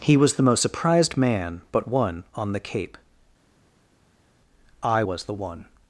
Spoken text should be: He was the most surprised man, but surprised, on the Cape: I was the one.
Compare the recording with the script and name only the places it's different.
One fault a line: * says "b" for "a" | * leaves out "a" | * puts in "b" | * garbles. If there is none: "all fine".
* says "one" for "surprised"